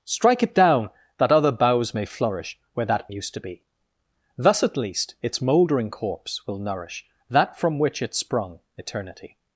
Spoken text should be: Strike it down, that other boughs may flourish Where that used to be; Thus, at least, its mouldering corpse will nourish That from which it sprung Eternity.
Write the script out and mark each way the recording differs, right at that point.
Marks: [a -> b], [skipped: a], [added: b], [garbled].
Strike it down, that other boughs may flourish Where that used to be; Thus, at least, its mouldering corpse will nourish That from which it sprung Eternity.